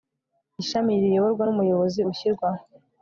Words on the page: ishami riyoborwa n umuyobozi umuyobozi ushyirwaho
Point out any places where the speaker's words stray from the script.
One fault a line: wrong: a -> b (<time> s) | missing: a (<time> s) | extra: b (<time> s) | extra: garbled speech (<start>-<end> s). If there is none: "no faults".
missing: umuyobozi (2.0 s)